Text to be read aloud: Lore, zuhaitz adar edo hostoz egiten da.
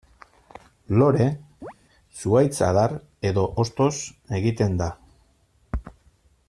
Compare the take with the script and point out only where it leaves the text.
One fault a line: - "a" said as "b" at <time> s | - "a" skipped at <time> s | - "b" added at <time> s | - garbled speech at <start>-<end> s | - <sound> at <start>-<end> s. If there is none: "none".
- chirp at 1.6-1.7 s